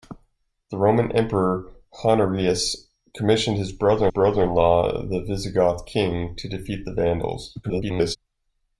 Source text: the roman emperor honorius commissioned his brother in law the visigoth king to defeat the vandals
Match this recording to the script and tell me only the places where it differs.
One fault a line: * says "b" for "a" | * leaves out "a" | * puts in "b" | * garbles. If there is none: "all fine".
* puts in "brother"
* garbles